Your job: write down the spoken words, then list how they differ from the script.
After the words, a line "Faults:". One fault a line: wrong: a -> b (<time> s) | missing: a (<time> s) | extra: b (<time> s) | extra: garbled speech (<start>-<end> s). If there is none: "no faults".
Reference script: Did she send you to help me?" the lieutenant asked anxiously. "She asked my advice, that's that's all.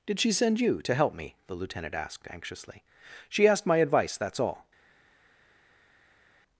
Did she send you to help me?" the lieutenant asked anxiously. "She asked my advice, that's all.
Faults:
missing: that's (4.4 s)